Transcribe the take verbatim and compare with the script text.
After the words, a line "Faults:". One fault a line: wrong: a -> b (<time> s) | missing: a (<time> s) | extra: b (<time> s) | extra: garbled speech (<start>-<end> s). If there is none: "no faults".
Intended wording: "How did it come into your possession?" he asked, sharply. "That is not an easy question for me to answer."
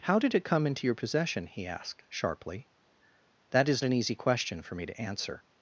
"How did it come into your possession?" he asked, sharply. "That is an easy question for me to answer."
Faults:
missing: not (3.8 s)